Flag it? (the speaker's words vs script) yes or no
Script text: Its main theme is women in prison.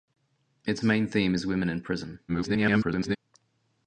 yes